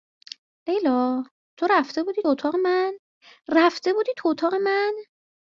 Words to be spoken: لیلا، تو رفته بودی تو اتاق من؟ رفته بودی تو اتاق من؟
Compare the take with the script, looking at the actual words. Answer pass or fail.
fail